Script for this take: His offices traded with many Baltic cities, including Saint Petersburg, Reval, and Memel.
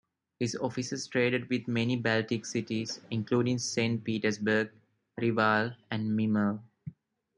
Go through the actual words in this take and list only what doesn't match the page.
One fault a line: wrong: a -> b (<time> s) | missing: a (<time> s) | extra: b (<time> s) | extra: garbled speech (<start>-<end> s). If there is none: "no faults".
no faults